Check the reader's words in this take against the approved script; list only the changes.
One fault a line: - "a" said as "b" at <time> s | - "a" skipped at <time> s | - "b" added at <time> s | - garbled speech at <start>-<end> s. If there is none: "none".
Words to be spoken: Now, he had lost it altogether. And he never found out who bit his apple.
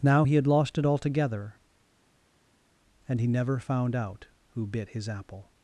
none